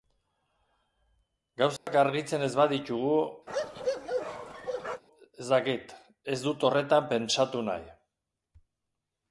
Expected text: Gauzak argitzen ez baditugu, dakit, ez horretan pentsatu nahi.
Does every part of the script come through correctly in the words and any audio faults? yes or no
no